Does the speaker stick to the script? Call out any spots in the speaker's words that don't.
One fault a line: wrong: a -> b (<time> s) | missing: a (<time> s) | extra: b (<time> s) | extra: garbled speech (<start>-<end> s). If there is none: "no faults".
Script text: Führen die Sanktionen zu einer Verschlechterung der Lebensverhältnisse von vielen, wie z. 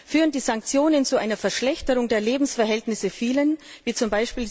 missing: von (3.1 s)